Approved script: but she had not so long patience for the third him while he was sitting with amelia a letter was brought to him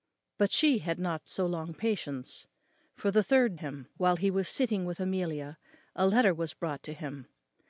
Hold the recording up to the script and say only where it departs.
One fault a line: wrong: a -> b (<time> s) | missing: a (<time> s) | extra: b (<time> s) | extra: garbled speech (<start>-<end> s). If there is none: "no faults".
no faults